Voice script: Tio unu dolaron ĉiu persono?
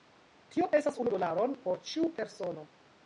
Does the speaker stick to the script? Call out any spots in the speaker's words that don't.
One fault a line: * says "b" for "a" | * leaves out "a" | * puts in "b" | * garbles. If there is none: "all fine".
* puts in "estas"
* puts in "por"